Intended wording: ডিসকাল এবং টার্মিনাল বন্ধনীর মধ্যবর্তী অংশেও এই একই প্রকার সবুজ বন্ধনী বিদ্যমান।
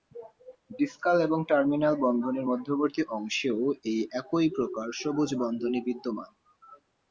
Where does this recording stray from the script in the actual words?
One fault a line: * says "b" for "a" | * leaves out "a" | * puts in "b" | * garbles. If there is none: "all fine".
all fine